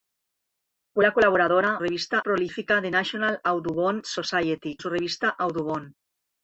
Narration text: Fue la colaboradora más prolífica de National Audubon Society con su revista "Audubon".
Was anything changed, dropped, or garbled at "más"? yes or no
yes